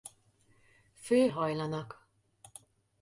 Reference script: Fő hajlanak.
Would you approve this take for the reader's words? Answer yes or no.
yes